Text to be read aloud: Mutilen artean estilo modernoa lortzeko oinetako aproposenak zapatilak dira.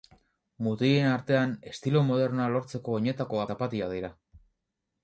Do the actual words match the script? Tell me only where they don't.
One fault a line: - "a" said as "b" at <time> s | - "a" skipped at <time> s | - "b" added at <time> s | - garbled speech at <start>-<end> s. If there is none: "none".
- "aproposenak" skipped at 3.5 s